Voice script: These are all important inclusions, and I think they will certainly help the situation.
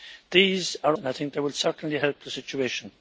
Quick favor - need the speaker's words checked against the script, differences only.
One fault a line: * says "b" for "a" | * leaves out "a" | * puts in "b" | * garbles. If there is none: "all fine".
* leaves out "all important inclusions"